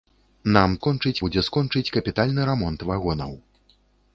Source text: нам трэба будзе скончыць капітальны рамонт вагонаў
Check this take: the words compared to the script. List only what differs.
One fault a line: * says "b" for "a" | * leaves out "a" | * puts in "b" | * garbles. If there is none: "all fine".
* says "скончыць" for "трэба"